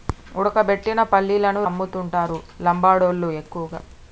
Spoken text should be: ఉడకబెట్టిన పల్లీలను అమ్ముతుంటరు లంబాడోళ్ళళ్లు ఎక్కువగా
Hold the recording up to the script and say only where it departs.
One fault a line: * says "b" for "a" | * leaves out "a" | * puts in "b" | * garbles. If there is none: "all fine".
all fine